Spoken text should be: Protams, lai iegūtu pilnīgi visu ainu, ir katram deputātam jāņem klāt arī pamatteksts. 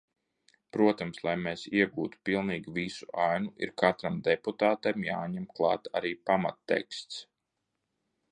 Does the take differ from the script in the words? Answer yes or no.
yes